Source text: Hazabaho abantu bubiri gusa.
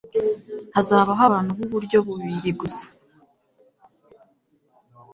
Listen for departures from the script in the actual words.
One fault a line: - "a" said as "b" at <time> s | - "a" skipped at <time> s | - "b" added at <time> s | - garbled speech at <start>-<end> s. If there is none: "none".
- "b'uburyo" added at 1.6 s